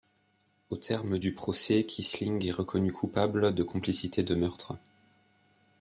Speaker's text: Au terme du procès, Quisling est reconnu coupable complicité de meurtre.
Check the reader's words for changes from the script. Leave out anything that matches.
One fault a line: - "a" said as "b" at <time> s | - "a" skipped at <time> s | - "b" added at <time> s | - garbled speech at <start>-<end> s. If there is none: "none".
- "de" added at 3.5 s